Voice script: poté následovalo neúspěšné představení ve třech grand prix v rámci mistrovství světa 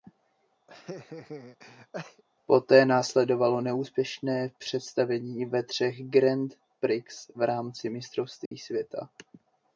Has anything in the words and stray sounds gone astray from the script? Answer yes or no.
yes